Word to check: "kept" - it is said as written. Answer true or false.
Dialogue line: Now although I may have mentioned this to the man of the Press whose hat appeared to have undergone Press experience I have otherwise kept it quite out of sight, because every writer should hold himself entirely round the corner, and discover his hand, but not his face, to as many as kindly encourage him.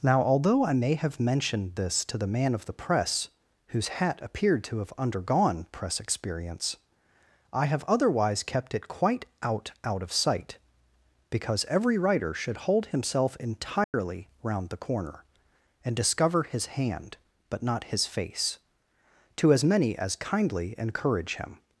true